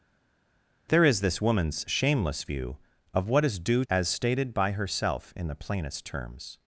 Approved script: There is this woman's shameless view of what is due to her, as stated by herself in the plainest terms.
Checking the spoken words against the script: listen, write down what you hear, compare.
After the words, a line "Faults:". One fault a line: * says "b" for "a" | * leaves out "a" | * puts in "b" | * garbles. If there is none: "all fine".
There is this woman's shameless view of what is due as stated by herself in the plainest terms.
Faults:
* leaves out "to her"